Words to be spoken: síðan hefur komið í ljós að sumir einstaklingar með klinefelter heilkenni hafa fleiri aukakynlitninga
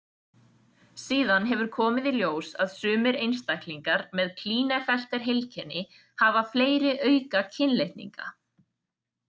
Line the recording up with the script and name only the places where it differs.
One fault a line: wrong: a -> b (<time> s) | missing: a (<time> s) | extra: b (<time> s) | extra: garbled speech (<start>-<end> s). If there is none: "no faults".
no faults